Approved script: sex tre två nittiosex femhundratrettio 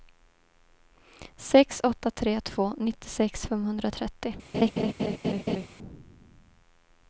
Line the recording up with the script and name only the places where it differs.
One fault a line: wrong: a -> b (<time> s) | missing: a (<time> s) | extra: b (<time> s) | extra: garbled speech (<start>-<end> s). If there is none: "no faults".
extra: åtta (1.8 s)